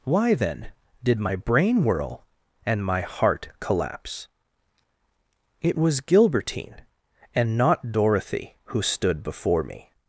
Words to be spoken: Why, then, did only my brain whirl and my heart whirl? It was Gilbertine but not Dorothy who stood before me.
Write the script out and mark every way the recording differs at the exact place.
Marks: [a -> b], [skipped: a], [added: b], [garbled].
Why, then, did [skipped: only] my brain whirl and my heart [whirl? -> collapse] It was Gilbertine [but -> and] not Dorothy who stood before me.